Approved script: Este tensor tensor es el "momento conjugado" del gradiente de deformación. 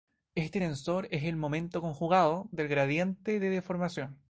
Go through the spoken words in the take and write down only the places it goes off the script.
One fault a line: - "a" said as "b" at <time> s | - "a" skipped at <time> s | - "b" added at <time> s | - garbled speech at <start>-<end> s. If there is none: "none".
- "tensor" skipped at 1.1 s